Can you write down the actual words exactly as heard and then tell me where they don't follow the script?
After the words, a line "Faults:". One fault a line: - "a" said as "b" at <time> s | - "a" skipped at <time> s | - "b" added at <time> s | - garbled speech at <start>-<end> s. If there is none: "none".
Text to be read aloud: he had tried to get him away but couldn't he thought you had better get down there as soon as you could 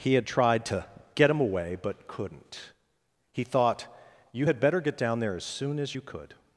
he had tried to get him away but couldn't he thought you had better get down there as soon as you could
Faults:
none